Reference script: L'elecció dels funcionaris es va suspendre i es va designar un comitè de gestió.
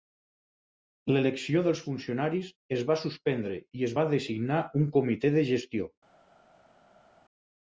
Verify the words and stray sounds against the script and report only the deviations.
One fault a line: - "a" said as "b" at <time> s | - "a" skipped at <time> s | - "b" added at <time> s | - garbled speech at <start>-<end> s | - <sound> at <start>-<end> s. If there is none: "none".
none